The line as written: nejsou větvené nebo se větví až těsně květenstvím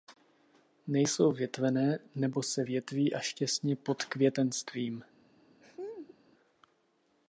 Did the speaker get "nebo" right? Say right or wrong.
right